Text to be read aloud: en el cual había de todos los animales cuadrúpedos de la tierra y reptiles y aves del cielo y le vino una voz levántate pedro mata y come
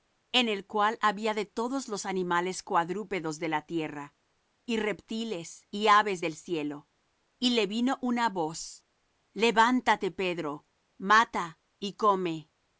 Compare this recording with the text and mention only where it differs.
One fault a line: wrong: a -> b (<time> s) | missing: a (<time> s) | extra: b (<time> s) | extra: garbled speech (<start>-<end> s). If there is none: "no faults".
no faults